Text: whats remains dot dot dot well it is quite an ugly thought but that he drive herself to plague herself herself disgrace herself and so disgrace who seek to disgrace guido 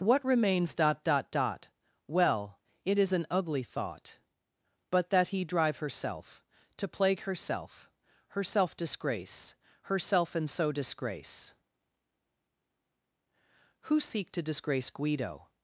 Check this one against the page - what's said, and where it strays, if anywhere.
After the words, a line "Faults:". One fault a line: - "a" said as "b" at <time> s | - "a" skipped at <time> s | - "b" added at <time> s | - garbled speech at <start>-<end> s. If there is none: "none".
what remains dot dot dot well it is an ugly thought but that he drive herself to plague herself herself disgrace herself and so disgrace who seek to disgrace guido
Faults:
- "whats" said as "what" at 0.0 s
- "quite" skipped at 3.1 s